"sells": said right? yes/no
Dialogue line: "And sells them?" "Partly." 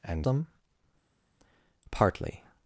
no